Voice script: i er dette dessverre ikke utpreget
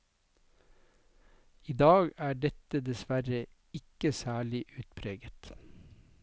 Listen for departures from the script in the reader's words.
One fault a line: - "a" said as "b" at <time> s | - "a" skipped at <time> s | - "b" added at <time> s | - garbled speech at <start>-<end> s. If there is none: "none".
- "dag" added at 1.8 s
- "særlig" added at 4.1 s